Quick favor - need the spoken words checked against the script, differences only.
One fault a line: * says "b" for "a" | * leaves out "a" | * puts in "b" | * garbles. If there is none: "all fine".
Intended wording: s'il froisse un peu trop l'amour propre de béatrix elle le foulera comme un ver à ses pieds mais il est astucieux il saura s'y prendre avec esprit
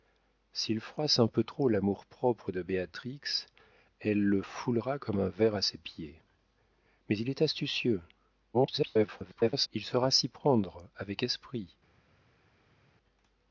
* garbles